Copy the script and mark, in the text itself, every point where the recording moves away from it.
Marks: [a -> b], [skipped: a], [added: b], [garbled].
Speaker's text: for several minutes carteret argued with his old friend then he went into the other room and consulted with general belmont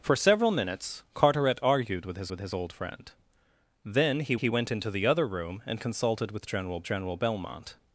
for several minutes carteret argued with his [added: with his] old friend then he [added: he] went into the other room and consulted with general [added: general] belmont